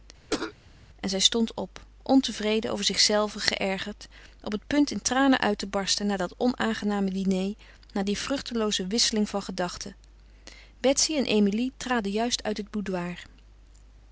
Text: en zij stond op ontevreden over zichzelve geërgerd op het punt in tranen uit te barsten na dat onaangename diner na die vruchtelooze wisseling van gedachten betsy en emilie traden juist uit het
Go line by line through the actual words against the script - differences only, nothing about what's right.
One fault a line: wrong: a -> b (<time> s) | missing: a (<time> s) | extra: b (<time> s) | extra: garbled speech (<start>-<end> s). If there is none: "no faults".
no faults